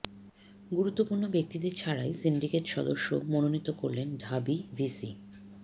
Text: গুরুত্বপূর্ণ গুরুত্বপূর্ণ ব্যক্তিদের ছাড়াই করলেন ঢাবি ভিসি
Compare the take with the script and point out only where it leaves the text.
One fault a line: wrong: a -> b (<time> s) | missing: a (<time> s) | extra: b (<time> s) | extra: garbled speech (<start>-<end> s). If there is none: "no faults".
missing: গুরুত্বপূর্ণ (1.2 s)
extra: সিন্ডিকেট সদস্য মনোনীত (2.1 s)